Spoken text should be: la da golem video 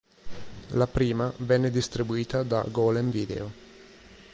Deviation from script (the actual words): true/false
true